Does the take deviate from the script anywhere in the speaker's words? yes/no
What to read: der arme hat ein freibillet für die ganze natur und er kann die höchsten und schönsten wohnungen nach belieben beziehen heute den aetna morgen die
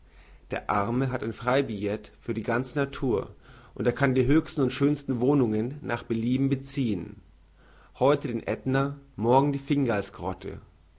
no